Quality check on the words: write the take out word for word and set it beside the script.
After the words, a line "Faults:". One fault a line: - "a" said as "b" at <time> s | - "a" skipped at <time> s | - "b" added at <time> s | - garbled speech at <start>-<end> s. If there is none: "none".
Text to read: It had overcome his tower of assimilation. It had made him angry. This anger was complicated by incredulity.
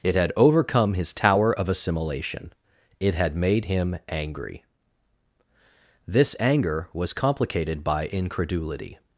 It had overcome his tower of assimilation. It had made him angry. This anger was complicated by incredulity.
Faults:
none